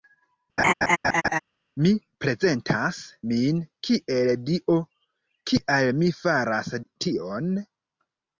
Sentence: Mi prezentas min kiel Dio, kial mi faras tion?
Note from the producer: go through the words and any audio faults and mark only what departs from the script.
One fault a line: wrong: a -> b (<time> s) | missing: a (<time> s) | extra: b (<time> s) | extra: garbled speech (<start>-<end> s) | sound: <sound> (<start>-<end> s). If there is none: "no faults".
sound: laugh (0.6-1.4 s)